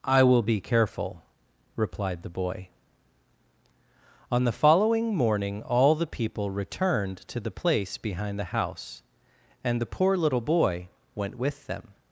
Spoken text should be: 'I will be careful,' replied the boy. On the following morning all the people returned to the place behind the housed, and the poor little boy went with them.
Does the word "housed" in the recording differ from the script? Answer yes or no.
yes